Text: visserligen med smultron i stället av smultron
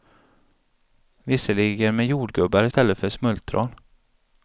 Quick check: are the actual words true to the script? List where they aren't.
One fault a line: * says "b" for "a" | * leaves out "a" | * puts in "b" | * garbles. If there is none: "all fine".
* says "jordgubbar" for "smultron"
* says "för" for "av"